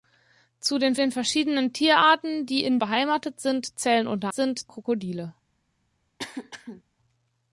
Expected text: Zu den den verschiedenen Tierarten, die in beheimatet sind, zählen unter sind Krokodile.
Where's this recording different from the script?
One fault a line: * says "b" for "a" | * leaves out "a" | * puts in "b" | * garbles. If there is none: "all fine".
all fine